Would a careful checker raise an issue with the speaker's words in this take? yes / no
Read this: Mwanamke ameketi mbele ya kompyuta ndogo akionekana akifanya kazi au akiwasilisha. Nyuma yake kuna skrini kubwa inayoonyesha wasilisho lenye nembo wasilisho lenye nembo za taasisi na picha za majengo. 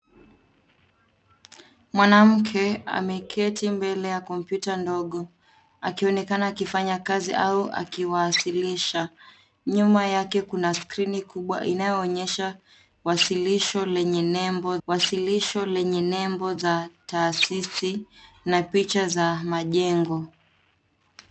no